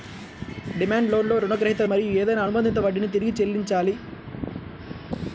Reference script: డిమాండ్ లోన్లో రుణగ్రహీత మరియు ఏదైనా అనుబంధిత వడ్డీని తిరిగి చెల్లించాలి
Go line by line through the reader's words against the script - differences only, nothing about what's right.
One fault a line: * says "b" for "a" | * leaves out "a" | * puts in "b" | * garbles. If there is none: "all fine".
all fine